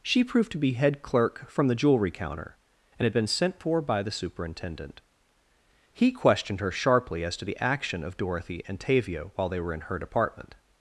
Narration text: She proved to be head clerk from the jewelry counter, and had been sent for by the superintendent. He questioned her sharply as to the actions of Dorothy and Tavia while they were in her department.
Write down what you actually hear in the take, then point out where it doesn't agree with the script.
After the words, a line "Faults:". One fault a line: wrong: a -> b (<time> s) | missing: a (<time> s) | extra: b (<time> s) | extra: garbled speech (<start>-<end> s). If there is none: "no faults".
She proved to be head clerk from the jewelry counter, and had been sent for by the superintendent. He questioned her sharply as to the action of Dorothy and Tavia while they were in her department.
Faults:
wrong: actions -> action (7.6 s)